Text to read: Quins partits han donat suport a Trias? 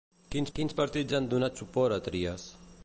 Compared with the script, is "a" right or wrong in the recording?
right